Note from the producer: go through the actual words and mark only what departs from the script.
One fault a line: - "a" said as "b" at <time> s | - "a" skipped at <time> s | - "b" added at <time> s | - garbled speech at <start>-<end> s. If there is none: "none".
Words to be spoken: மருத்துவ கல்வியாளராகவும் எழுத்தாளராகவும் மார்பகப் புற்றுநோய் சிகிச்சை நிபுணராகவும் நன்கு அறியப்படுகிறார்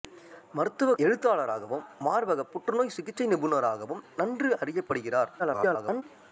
- "கல்வியாளராகவும்" skipped at 0.9 s
- garbled speech at 5.4-6.0 s